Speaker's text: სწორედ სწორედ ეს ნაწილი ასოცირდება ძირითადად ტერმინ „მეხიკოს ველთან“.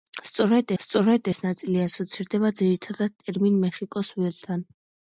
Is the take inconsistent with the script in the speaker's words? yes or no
no